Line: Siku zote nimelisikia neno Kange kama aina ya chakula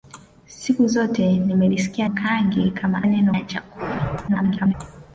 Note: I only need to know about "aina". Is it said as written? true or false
false